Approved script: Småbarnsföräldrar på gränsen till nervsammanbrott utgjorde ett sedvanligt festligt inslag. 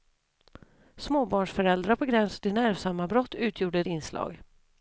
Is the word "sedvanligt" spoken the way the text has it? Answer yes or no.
no